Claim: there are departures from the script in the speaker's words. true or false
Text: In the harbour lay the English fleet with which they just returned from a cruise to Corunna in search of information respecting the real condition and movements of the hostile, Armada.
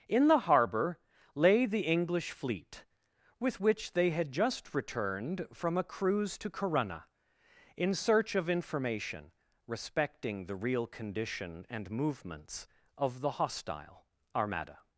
true